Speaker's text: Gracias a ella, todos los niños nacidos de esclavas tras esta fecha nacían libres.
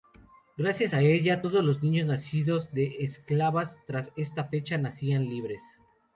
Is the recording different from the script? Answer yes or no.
no